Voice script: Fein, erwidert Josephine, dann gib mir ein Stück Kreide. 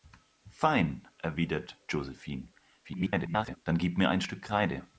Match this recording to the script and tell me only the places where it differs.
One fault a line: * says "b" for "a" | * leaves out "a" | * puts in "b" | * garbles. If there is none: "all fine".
* garbles